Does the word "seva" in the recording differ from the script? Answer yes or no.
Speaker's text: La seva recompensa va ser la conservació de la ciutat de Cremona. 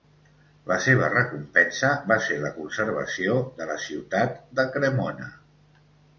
no